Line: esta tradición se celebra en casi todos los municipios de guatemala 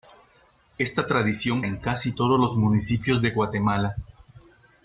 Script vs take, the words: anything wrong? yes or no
yes